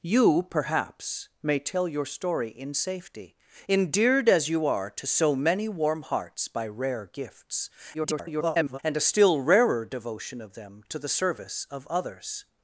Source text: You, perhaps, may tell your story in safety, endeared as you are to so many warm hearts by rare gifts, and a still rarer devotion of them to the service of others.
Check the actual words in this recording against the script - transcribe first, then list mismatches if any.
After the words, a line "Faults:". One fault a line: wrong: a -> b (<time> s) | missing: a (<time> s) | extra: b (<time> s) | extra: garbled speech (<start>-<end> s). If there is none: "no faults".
You, perhaps, may tell your story in safety, endeared as you are to so many warm hearts by rare gifts, [garbled] and a still rarer devotion of them to the service of others.
Faults:
extra: garbled speech (7.9-8.8 s)